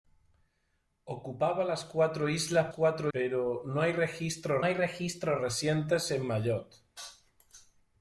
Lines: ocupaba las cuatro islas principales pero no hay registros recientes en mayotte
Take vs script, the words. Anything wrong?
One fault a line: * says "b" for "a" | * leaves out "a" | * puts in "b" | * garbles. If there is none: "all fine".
* says "cuatro" for "principales"
* puts in "hay registros"